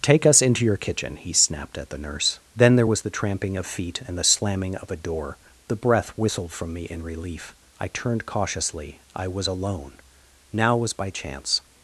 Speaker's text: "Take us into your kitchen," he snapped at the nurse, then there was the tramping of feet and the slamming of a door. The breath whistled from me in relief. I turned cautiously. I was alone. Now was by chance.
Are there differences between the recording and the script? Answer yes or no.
no